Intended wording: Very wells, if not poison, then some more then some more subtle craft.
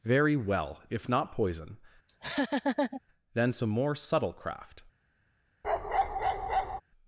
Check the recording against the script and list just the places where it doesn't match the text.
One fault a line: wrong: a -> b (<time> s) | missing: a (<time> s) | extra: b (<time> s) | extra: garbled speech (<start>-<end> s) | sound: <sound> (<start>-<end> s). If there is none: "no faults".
wrong: wells -> well (0.3 s)
sound: laugh (2.1-3.0 s)
missing: then some more (3.9 s)
sound: bark (5.6-6.8 s)